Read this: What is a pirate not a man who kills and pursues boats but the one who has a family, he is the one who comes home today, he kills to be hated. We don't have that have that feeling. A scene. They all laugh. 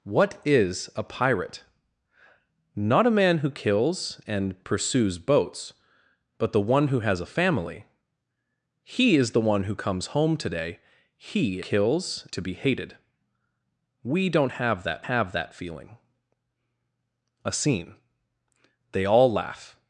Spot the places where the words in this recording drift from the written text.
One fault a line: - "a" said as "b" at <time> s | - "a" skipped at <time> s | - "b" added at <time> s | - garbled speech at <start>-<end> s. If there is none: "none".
none